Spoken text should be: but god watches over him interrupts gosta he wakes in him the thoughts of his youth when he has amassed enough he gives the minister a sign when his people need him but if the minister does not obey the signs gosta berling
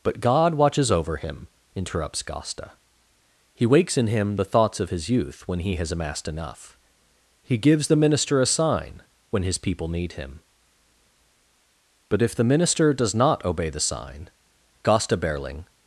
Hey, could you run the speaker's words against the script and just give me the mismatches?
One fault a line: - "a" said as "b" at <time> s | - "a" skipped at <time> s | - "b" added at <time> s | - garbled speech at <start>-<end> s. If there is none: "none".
- "signs" said as "sign" at 13.8 s